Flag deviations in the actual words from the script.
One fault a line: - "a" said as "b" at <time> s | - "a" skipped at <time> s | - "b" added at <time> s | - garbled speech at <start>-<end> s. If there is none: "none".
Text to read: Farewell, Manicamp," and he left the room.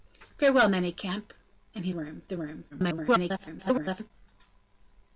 - "left" said as "room" at 1.9 s
- garbled speech at 2.7-4.1 s